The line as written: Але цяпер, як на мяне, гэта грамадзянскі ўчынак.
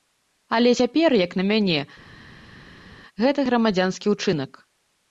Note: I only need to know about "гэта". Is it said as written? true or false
true